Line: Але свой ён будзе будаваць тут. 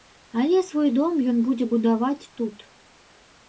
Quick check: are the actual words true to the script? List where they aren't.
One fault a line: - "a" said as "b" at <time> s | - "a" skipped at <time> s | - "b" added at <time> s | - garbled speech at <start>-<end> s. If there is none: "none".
- "дом" added at 0.9 s